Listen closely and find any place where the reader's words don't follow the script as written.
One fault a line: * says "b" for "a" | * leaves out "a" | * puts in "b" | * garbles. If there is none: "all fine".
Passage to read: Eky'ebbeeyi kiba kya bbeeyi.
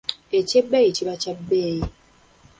all fine